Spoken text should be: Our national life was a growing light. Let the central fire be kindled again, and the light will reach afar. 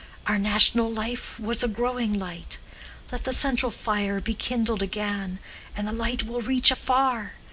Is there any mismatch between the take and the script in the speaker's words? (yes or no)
no